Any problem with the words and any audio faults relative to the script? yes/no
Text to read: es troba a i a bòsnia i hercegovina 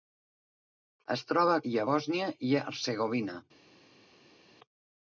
no